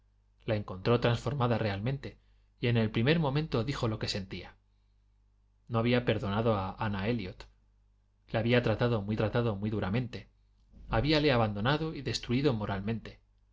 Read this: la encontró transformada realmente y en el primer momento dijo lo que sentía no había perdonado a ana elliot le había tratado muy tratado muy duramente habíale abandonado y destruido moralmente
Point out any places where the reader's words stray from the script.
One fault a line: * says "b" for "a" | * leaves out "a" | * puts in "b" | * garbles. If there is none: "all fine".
all fine